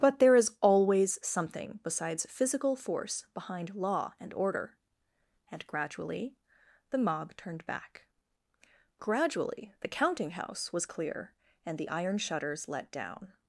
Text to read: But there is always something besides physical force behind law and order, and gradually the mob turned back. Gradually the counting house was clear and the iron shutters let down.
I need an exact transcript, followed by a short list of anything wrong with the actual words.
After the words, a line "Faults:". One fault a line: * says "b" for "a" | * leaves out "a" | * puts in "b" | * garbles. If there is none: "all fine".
But there is always something besides physical force behind law and order, and gradually the mob turned back. Gradually the counting house was clear and the iron shutters let down.
Faults:
all fine